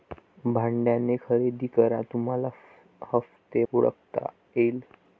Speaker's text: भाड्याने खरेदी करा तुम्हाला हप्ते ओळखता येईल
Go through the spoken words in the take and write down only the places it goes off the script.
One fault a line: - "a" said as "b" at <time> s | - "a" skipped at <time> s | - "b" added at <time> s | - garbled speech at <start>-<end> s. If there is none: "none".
none